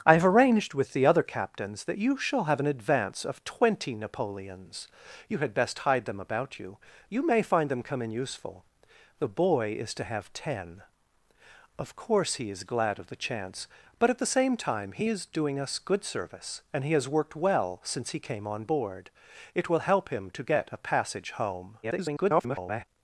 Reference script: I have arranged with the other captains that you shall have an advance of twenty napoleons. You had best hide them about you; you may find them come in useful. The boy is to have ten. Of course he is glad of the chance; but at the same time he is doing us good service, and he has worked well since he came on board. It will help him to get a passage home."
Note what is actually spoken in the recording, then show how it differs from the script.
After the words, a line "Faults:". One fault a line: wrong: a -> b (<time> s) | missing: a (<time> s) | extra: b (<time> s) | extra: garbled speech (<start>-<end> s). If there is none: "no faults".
I have arranged with the other captains that you shall have an advance of twenty napoleons. You had best hide them about you; you may find them come in useful. The boy is to have ten. Of course he is glad of the chance; but at the same time he is doing us good service, and he has worked well since he came on board. It will help him to get a passage home." [garbled]
Faults:
extra: garbled speech (21.8-22.8 s)